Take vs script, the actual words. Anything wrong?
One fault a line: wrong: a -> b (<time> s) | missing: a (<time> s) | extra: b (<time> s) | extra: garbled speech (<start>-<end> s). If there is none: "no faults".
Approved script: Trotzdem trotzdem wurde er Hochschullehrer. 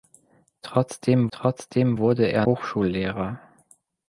no faults